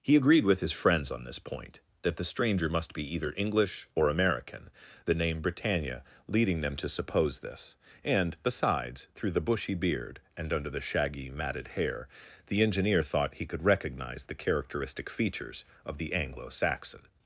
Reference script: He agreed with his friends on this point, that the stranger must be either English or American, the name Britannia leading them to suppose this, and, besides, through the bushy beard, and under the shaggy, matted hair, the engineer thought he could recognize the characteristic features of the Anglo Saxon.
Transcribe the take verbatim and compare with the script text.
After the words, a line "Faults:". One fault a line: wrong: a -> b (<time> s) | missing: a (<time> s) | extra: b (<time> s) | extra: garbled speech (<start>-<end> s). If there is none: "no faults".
He agreed with his friends on this point, that the stranger must be either English or American, the name Britannia leading them to suppose this, and, besides, through the bushy beard, and under the shaggy, matted hair, the engineer thought he could recognize the characteristic features of the Anglo Saxon.
Faults:
no faults